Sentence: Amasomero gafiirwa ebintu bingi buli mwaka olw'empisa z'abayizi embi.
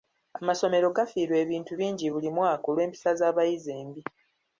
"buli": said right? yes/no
yes